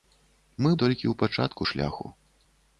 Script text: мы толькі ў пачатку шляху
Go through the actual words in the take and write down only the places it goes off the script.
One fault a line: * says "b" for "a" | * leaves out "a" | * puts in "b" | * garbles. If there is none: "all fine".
all fine